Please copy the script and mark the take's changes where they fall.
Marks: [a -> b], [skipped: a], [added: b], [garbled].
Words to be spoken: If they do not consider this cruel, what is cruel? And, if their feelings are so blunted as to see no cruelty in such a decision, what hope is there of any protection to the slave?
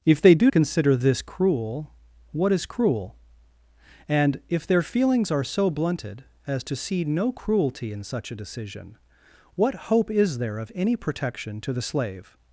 If they do [skipped: not] consider this cruel, what is cruel? And, if their feelings are so blunted as to see no cruelty in such a decision, what hope is there of any protection to the slave?